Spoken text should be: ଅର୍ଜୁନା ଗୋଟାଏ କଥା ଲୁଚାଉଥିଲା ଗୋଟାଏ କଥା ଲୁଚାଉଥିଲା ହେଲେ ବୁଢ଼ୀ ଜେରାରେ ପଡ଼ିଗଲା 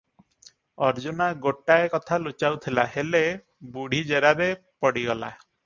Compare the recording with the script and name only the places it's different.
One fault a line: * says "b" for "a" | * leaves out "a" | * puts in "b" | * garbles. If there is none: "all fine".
* leaves out "ଗୋଟାଏ କଥା ଲୁଚାଉଥିଲା"